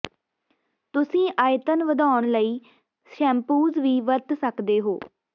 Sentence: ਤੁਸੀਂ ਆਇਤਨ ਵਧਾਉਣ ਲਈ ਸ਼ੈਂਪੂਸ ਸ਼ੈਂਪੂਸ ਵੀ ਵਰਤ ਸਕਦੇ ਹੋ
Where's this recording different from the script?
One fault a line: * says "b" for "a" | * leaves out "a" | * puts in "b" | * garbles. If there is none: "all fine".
* leaves out "ਸ਼ੈਂਪੂਸ"